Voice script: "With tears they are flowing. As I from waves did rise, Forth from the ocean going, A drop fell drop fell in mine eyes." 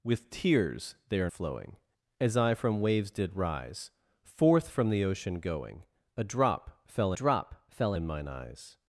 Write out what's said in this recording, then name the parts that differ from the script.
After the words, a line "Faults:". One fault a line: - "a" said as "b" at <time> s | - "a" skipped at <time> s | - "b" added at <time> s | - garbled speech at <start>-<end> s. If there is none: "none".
"With tears they are flowing. As I from waves did rise, Forth from the ocean going, A drop fell drop fell in mine eyes."
Faults:
none